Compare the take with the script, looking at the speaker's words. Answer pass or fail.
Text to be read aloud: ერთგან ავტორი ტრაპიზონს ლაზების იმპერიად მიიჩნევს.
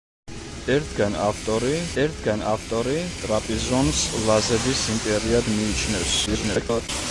fail